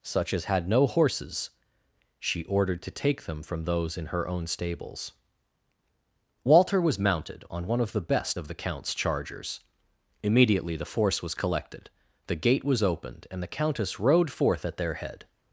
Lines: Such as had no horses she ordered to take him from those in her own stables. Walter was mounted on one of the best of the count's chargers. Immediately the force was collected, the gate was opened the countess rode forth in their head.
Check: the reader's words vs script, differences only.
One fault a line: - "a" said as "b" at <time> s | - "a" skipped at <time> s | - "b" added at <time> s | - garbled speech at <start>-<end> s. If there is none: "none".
- "him" said as "them" at 3.2 s
- "and" added at 13.3 s
- "in" said as "at" at 14.6 s